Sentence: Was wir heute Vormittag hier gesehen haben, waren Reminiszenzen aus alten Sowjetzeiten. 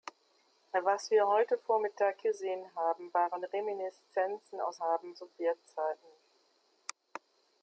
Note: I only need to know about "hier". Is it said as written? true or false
false